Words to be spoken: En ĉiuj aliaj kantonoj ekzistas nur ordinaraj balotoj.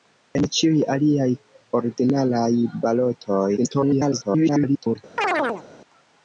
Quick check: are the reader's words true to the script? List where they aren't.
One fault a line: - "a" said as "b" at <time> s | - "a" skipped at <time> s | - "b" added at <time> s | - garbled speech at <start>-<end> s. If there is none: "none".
- "kantonoj ekzistas nur" skipped at 1.3 s
- garbled speech at 3.6-5.0 s